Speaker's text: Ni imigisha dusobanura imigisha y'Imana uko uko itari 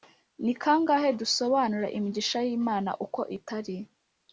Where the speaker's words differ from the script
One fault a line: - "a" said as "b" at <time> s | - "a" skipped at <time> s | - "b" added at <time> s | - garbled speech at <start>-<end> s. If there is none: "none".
- "imigisha" said as "kangahe" at 0.6 s
- "uko" skipped at 3.2 s